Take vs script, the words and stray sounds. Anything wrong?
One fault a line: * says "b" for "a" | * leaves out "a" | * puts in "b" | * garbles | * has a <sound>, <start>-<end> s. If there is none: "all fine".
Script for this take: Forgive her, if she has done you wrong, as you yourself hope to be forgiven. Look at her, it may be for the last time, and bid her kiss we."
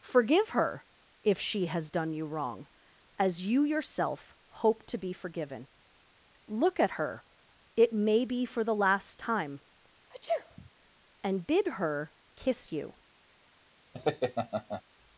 * has a sneeze, 10.1-10.7 s
* says "you" for "we"
* has a laugh, 13.9-14.8 s